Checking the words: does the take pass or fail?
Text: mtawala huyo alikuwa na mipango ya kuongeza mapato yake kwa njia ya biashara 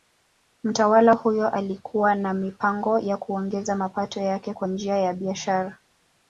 pass